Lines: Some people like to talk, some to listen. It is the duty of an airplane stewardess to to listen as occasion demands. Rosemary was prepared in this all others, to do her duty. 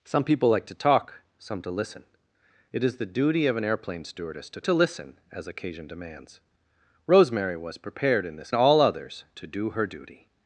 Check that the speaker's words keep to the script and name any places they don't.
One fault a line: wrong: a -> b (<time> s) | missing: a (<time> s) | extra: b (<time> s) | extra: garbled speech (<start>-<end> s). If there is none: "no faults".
no faults